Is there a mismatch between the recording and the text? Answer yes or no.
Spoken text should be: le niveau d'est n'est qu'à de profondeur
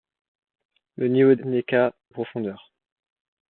yes